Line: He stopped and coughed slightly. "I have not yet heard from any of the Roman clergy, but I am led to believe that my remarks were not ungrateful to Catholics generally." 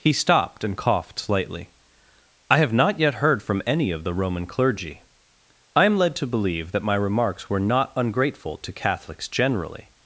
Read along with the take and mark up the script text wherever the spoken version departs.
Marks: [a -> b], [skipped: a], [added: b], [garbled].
He stopped and coughed slightly. "I have not yet heard from any of the Roman clergy, [skipped: but] I am led to believe that my remarks were not ungrateful to Catholics generally."